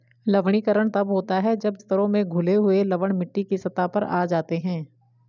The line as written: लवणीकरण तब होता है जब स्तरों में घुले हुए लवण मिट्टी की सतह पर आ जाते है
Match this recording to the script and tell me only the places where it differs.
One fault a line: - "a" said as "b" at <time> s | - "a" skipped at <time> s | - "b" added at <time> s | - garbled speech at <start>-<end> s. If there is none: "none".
none